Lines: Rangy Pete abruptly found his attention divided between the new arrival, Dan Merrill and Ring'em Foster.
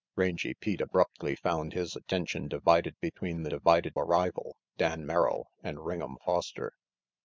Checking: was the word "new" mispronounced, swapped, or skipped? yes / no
yes